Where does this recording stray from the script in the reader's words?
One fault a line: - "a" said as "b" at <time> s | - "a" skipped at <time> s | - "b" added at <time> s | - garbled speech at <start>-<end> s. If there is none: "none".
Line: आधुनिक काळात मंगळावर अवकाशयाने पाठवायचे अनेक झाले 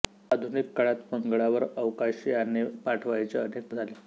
none